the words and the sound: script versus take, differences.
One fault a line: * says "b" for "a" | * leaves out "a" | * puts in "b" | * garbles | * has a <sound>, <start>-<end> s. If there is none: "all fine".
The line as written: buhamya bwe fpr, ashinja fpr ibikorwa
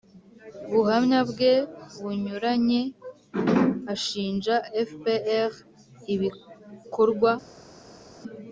* says "bunyuranye" for "fpr"